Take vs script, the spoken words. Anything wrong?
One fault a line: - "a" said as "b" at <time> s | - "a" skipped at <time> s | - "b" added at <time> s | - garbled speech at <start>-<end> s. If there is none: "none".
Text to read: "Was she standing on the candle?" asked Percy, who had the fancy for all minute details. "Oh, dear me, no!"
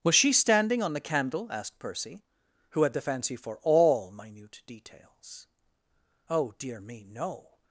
none